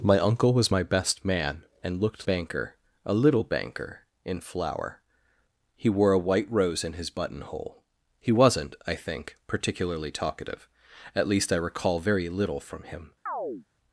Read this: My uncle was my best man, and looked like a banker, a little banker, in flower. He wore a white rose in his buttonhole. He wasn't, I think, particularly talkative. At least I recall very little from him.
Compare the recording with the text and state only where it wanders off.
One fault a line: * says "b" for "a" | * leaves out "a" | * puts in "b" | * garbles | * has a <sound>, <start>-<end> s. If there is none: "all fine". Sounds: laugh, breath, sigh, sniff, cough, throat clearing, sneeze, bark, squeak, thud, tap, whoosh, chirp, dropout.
* leaves out "like a"
* has a chirp, 13.3-13.7 s